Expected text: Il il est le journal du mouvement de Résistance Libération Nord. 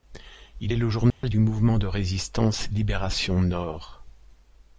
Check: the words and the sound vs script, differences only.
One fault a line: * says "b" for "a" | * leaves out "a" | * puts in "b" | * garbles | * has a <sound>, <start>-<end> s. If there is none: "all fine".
* leaves out "il"
* has a dropout, 1.1-1.2 s